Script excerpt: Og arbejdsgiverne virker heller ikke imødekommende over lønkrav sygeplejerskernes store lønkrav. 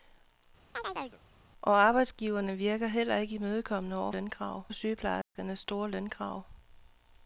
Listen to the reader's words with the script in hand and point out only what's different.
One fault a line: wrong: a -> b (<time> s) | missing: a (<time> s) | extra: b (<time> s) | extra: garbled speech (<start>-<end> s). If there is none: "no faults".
no faults